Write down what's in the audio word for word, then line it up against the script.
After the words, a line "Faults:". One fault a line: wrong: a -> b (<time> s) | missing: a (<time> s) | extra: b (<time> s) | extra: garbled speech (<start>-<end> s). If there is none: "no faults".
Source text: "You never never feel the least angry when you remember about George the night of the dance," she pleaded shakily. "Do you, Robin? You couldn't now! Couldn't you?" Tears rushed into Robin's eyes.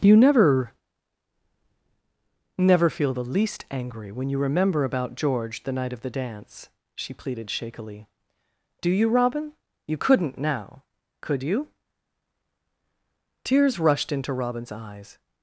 "You never never feel the least angry when you remember about George the night of the dance," she pleaded shakily. "Do you, Robin? You couldn't now! Could you?" Tears rushed into Robin's eyes.
Faults:
wrong: Couldn't -> Could (11.2 s)